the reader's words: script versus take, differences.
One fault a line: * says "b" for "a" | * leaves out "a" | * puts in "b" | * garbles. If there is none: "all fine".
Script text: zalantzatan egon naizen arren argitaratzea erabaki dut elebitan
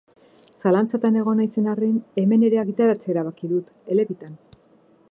* puts in "hemen ere"